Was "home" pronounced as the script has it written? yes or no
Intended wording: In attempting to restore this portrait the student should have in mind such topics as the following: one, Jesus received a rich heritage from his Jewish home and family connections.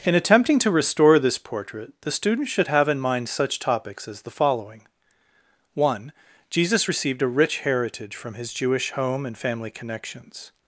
yes